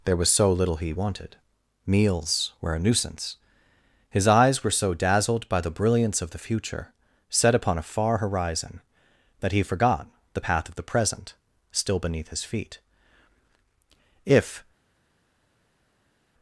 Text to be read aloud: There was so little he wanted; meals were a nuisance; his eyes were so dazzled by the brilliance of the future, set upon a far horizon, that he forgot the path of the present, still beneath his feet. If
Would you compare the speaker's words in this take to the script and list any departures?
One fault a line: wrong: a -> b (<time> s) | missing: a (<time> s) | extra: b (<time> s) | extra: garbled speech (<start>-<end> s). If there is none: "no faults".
no faults